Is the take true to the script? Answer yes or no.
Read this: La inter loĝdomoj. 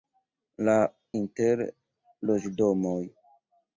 yes